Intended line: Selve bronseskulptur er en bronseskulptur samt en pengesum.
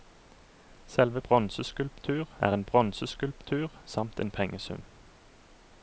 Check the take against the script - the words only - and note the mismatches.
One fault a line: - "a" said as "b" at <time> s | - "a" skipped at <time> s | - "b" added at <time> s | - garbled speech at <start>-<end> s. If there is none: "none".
none